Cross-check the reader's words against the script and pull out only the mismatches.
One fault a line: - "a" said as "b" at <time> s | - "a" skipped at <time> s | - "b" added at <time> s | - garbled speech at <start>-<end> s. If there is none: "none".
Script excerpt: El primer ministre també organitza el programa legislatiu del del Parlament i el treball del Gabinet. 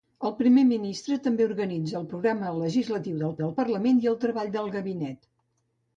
none